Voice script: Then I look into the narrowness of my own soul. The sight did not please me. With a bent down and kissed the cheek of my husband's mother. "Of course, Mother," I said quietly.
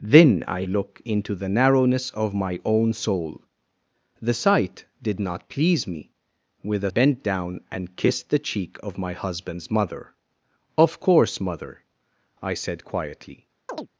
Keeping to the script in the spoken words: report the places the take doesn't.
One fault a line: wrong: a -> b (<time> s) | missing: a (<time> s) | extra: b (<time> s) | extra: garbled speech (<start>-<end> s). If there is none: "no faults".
no faults